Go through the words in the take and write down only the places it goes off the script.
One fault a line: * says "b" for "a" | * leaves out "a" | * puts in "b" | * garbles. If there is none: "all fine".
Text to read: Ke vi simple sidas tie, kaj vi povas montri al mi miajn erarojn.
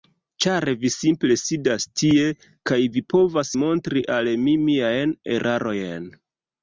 * says "Ĉar" for "Ke"